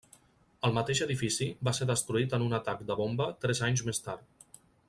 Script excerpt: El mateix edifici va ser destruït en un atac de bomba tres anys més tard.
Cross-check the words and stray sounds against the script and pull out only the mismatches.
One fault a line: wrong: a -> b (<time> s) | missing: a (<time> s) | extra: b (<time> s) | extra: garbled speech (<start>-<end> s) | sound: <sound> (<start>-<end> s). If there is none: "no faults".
no faults